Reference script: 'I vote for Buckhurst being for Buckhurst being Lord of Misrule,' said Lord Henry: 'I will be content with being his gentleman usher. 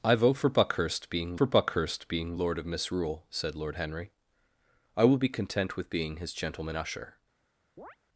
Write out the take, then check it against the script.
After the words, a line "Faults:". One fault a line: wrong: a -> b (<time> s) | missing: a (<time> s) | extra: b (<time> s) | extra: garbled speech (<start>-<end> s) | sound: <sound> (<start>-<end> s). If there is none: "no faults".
'I vote for Buckhurst being for Buckhurst being Lord of Misrule,' said Lord Henry: 'I will be content with being his gentleman usher.
Faults:
sound: chirp (7.8-8.0 s)